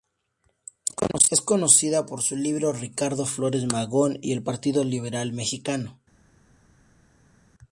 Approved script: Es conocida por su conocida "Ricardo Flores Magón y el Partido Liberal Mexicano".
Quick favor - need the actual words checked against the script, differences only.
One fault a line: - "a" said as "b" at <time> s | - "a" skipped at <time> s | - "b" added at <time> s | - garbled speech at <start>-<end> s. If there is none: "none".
- "conocida" said as "libro" at 2.4 s